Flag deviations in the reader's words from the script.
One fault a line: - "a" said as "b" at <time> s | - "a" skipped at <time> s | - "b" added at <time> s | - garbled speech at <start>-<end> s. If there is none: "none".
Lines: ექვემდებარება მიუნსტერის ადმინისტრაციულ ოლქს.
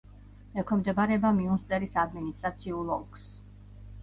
none